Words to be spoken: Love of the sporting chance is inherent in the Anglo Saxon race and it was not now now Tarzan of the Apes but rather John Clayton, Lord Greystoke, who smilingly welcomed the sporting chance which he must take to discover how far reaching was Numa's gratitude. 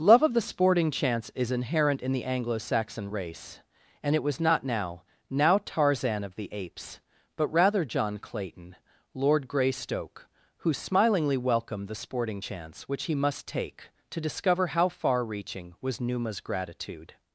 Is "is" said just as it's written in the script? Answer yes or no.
yes